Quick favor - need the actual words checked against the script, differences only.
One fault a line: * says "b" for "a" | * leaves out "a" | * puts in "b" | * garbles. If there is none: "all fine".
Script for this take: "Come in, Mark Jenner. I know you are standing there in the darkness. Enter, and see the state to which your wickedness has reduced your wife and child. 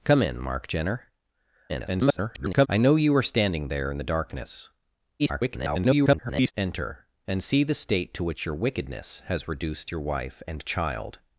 * garbles
* garbles